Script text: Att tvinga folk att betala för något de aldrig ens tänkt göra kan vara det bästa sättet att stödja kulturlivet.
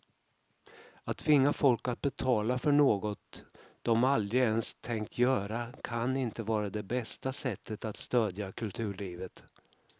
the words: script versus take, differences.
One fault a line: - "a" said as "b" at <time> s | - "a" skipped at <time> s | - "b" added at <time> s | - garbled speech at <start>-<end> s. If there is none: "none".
- "inte" added at 6.2 s